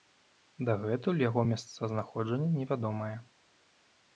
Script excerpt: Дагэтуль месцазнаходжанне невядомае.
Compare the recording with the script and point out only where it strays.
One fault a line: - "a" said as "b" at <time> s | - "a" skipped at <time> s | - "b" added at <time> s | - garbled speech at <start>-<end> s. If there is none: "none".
- "яго" added at 1.3 s